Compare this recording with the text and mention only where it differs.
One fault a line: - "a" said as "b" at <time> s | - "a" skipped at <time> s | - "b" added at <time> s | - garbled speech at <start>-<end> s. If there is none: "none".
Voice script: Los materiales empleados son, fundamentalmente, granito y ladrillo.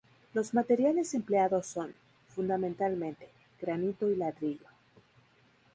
none